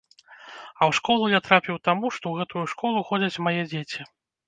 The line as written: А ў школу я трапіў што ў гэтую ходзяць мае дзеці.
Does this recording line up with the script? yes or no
no